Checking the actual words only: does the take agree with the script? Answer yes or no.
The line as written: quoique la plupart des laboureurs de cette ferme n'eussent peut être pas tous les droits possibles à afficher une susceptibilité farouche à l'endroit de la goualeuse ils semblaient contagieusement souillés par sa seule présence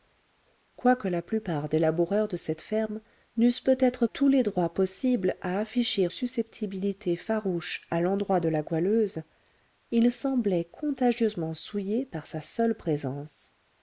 no